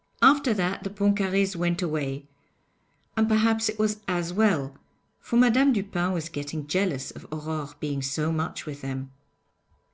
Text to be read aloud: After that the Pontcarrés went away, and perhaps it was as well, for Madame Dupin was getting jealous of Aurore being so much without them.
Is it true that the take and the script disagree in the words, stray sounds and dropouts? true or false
true